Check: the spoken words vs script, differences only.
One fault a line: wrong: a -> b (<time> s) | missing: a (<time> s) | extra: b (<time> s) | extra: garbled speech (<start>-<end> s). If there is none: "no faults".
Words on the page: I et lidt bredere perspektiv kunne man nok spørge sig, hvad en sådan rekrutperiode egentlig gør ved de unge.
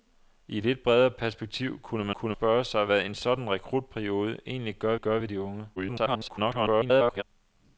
wrong: nok -> kunne (2.1 s)
extra: gør (5.0 s)
extra: garbled speech (5.8-7.2 s)